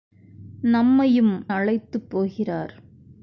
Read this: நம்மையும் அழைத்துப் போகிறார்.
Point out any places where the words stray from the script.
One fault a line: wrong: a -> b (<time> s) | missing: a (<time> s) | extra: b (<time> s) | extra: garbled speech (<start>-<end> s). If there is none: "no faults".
no faults